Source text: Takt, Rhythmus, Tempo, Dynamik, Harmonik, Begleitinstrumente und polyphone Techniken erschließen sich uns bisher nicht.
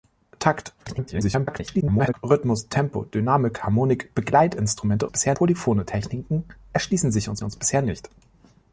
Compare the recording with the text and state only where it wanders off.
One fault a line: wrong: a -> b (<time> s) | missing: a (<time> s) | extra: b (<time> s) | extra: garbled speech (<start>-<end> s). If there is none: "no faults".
extra: garbled speech (0.8-2.1 s)
wrong: und -> bisher (5.1 s)
extra: uns (7.4 s)